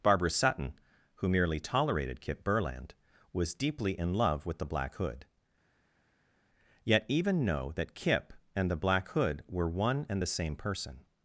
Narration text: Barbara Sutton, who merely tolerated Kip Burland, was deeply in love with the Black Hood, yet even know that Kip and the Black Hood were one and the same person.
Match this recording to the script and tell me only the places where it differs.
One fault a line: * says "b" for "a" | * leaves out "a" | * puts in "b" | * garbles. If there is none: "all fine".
all fine